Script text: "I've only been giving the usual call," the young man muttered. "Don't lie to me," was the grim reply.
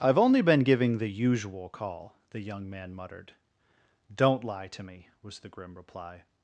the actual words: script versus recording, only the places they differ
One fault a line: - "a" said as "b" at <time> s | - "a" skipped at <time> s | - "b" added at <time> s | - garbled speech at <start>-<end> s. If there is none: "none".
none